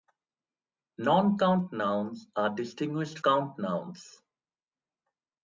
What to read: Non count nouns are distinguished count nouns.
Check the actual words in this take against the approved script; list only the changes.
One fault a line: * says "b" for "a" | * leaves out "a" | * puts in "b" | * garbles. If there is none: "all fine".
all fine